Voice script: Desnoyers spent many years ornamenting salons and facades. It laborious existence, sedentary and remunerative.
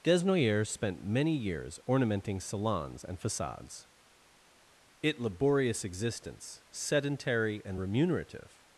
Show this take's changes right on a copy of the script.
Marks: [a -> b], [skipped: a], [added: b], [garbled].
Desnoyers spent many years ornamenting salons and facades. It laborious existence, sedentary and remunerative.